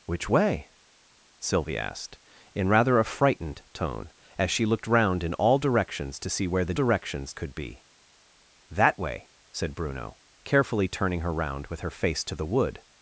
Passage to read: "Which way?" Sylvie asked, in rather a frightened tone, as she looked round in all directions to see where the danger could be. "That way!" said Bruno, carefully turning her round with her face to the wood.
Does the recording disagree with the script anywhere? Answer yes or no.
yes